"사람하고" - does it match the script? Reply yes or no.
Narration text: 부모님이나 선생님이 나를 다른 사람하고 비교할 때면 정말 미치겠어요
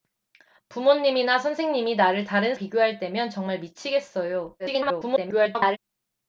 no